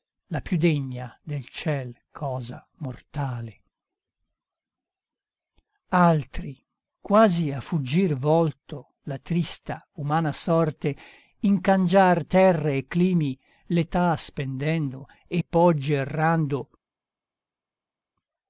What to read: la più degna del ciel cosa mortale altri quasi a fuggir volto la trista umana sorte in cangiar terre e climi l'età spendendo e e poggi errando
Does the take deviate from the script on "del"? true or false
false